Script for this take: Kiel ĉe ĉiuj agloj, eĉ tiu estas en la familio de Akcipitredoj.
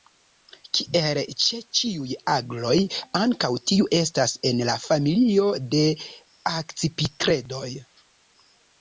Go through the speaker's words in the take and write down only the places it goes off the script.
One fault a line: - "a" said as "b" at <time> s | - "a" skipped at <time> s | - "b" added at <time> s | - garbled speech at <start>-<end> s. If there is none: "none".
- "eĉ" said as "ankaŭ" at 3.2 s